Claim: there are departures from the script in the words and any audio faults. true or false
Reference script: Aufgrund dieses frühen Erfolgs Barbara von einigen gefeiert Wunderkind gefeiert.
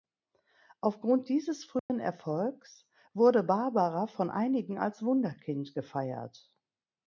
true